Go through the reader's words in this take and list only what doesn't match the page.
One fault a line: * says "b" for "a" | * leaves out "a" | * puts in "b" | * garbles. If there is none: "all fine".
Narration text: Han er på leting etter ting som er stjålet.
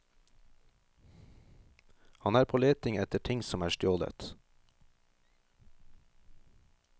all fine